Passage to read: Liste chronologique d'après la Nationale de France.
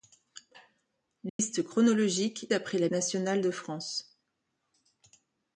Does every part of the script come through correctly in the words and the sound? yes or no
no